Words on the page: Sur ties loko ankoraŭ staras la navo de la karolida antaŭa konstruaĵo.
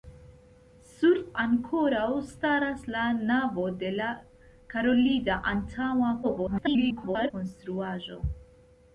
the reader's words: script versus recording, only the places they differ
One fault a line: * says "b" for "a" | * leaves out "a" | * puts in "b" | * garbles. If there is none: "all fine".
* leaves out "ties loko"
* garbles